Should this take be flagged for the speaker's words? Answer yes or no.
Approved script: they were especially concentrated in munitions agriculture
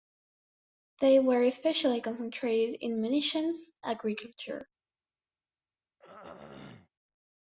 no